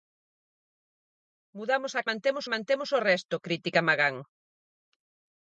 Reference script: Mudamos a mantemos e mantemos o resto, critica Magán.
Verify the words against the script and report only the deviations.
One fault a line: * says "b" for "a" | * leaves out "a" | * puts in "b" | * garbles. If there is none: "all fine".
all fine